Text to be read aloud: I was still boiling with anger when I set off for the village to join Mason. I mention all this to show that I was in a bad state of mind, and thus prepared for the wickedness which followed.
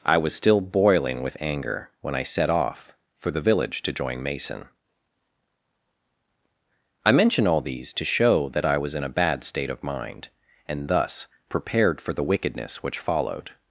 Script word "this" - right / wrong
wrong